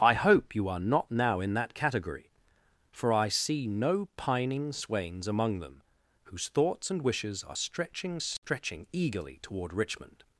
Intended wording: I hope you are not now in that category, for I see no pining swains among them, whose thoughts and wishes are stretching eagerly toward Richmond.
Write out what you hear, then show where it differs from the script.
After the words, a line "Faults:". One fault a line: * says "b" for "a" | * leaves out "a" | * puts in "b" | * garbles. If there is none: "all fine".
I hope you are not now in that category, for I see no pining swains among them, whose thoughts and wishes are stretching stretching eagerly toward Richmond.
Faults:
* puts in "stretching"